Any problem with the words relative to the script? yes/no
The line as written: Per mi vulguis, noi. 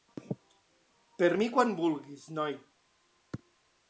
yes